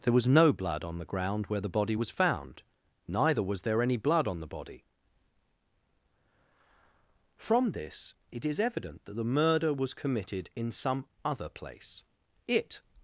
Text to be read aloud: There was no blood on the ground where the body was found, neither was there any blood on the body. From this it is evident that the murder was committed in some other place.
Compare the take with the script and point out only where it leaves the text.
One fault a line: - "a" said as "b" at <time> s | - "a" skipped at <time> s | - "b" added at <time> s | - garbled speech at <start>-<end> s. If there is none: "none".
- "It" added at 12.5 s